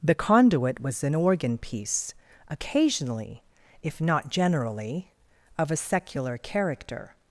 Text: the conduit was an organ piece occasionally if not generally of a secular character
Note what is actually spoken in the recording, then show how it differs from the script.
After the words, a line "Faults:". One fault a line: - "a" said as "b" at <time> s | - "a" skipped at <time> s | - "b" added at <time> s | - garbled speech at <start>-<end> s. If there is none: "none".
the conduit was an organ piece occasionally if not generally of a secular character
Faults:
none